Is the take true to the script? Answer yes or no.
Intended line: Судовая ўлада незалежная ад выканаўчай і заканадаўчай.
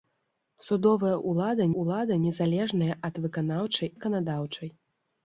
no